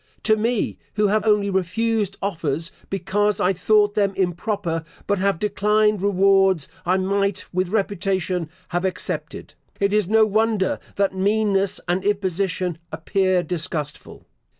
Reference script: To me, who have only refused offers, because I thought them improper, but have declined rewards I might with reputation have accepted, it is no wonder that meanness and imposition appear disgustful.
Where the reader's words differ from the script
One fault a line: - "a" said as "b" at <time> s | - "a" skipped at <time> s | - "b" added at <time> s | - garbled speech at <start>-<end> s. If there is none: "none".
none